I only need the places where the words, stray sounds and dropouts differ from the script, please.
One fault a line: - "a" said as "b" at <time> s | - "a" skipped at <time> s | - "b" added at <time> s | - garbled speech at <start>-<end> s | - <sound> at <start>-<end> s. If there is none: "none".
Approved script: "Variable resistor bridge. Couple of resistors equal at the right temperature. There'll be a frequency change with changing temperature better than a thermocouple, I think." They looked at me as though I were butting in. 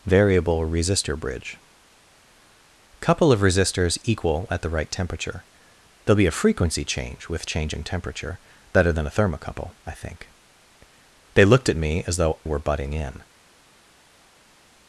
- "I" skipped at 12.4 s